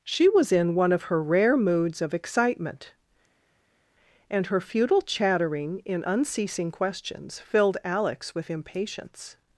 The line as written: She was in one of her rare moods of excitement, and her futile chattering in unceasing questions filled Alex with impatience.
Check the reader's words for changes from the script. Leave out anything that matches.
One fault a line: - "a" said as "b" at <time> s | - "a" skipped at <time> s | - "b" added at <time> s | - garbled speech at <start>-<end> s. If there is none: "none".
none